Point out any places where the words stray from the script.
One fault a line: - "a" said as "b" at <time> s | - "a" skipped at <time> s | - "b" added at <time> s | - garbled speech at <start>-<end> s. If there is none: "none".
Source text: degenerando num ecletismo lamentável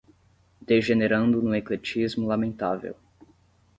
none